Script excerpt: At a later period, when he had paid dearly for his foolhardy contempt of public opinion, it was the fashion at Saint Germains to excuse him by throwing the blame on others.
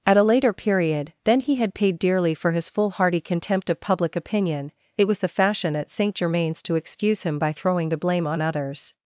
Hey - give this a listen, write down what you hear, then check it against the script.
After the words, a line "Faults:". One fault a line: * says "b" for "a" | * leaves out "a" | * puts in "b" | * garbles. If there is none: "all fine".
At a later period, then he had paid dearly for his foolhardy contempt of public opinion, it was the fashion at Saint Germains to excuse him by throwing the blame on others.
Faults:
* says "then" for "when"